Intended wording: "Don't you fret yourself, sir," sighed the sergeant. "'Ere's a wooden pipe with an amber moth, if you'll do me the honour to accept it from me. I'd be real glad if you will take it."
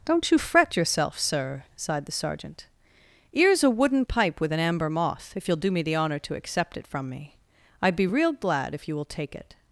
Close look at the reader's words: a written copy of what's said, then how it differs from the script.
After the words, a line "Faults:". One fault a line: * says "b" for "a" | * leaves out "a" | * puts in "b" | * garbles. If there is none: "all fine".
"Don't you fret yourself, sir," sighed the sergeant. "'Ere's a wooden pipe with an amber moth, if you'll do me the honour to accept it from me. I'd be real glad if you will take it."
Faults:
all fine